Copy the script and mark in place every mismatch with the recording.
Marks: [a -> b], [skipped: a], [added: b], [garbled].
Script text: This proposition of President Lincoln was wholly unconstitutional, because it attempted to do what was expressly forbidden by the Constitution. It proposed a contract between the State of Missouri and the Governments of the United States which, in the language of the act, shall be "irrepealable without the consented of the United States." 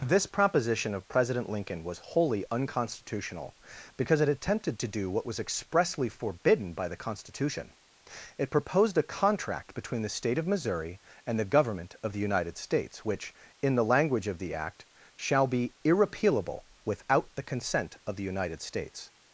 This proposition of President Lincoln was wholly unconstitutional, because it attempted to do what was expressly forbidden by the Constitution. It proposed a contract between the State of Missouri and the [Governments -> Government] of the United States which, in the language of the act, shall be "irrepealable without the [consented -> consent] of the United States."